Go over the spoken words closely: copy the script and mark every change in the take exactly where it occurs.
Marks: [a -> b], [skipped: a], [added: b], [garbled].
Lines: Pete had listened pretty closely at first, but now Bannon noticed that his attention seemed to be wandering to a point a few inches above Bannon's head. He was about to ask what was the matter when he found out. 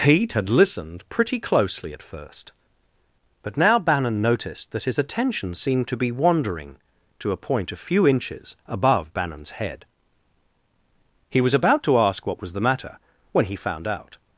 Pete had listened pretty closely at first, but now Bannon noticed that his attention seemed to be wandering to a point a few inches above Bannon's head. He was about to ask what was the matter when he found out.